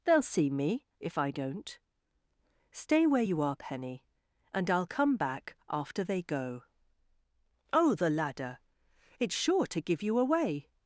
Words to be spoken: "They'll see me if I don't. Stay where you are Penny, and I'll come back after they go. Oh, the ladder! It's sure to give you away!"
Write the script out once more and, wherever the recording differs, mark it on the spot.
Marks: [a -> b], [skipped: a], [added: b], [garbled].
"They'll see me if I don't. Stay where you are Penny, and I'll come back after they go. Oh, the ladder! It's sure to give you away!"